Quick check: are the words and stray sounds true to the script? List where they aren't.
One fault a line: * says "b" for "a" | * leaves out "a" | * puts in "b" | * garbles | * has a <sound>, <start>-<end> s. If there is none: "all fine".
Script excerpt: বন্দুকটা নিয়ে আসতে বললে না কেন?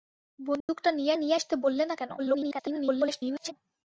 * has a dropout, 0.6-0.7 s
* puts in "নিয়ে"
* garbles